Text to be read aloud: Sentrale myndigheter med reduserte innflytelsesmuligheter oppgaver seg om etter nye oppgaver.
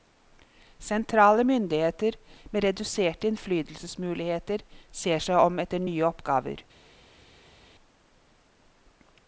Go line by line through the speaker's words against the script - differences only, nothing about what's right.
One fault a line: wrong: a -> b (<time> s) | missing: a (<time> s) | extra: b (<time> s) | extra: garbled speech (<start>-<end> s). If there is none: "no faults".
wrong: oppgaver -> ser (5.0 s)